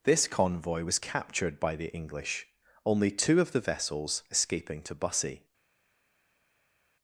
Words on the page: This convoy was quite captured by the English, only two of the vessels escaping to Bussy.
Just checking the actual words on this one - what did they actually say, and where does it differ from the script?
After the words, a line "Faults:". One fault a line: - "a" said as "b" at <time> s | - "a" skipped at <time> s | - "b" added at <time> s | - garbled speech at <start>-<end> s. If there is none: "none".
This convoy was captured by the English, only two of the vessels escaping to Bussy.
Faults:
- "quite" skipped at 1.0 s